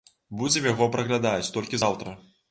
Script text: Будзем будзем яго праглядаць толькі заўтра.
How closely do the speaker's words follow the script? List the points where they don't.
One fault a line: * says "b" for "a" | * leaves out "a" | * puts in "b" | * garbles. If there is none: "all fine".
* leaves out "будзем"